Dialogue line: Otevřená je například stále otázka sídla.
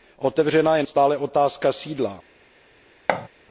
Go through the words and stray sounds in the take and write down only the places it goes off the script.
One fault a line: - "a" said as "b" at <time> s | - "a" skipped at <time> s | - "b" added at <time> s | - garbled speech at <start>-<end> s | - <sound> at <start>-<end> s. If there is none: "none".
- "například" skipped at 0.8 s
- thud at 3.1-3.3 s